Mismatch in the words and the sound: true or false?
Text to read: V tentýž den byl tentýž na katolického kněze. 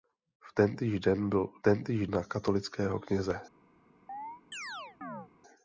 true